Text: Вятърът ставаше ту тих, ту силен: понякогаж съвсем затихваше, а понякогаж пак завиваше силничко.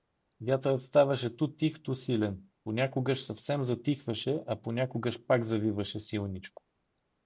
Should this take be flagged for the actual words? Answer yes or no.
no